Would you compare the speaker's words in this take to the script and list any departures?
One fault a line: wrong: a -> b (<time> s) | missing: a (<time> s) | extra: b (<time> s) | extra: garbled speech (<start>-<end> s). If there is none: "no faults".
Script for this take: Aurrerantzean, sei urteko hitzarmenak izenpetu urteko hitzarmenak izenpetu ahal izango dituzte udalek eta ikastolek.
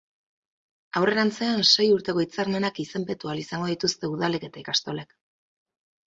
missing: urteko hitzarmenak izenpetu (3.3 s)